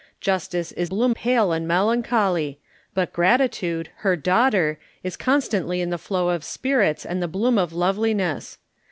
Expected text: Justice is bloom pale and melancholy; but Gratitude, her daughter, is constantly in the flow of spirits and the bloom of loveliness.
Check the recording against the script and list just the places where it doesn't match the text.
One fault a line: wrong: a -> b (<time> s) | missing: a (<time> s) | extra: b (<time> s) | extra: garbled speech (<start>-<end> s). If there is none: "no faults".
no faults